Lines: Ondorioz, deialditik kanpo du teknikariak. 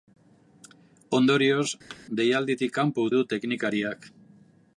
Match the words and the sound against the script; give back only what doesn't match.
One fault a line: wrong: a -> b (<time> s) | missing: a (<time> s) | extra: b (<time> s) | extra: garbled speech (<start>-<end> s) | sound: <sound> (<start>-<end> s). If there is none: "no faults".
sound: thud (1.9-2.1 s)